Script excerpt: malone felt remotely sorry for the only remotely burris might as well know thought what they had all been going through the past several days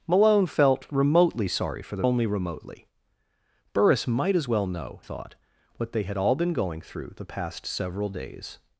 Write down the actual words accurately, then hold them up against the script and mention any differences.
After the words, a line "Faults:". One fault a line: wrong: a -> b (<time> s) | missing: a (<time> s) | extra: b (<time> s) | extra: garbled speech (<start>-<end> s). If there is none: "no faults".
malone felt remotely sorry for the only remotely burris might as well know thought what they had all been going through the past several days
Faults:
no faults